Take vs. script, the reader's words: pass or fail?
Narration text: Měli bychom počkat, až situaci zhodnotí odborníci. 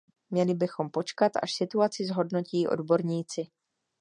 pass